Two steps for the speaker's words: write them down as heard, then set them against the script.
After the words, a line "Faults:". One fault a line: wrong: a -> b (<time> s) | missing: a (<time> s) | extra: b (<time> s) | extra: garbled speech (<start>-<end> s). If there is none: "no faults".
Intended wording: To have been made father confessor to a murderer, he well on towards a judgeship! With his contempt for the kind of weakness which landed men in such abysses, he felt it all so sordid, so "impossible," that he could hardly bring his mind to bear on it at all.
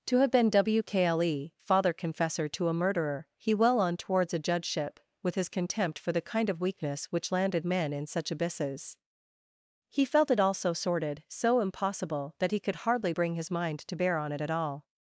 To have been wkle father confessor to a murderer, he well on towards a judgeship! With his contempt for the kind of weakness which landed men in such abysses, he felt it all so sordid, so "impossible," that he could hardly bring his mind to bear on it at all.
Faults:
wrong: made -> wkle (0.5 s)